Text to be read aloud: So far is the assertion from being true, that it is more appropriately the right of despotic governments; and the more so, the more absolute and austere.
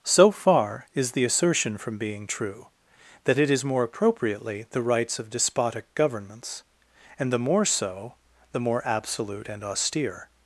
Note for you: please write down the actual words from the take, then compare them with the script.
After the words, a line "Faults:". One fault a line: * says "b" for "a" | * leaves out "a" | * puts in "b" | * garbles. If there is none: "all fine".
So far is the assertion from being true, that it is more appropriately the rights of despotic governments; and the more so, the more absolute and austere.
Faults:
* says "rights" for "right"